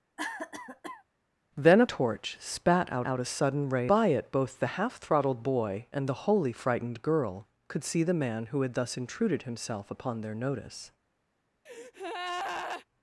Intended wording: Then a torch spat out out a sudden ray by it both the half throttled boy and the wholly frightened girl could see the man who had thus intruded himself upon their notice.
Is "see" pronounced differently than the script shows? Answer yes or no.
no